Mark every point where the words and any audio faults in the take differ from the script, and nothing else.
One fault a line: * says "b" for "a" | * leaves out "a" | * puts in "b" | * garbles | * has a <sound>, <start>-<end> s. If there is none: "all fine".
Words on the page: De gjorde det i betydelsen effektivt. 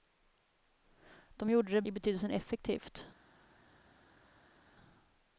all fine